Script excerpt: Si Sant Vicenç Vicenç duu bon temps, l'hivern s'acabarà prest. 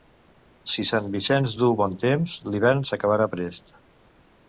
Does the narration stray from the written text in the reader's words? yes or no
yes